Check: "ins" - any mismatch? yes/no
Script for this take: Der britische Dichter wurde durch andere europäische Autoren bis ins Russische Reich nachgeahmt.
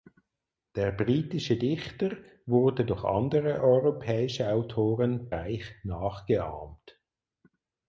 yes